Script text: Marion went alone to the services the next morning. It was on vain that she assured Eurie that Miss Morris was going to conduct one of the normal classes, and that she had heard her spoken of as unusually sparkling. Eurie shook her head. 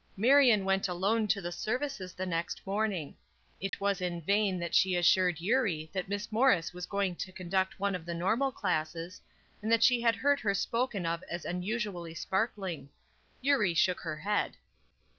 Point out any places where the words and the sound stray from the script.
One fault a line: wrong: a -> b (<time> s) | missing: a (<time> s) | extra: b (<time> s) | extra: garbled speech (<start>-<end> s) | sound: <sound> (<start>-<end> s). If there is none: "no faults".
sound: dropout (3.7-3.7 s)
wrong: on -> in (4.0 s)